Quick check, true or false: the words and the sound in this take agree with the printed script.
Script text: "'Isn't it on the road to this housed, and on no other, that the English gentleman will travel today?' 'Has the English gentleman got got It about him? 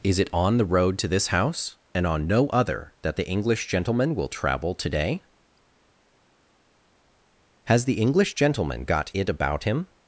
false